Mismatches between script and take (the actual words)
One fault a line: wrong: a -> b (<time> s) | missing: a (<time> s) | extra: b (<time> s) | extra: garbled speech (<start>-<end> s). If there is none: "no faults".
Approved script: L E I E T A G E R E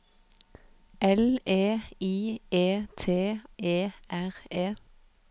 missing: A G (3.4 s)